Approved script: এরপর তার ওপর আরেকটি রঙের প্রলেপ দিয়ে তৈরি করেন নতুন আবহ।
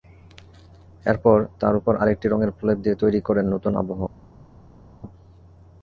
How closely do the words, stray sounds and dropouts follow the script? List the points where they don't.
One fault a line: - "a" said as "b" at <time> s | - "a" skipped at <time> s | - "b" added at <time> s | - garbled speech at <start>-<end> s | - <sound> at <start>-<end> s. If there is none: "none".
none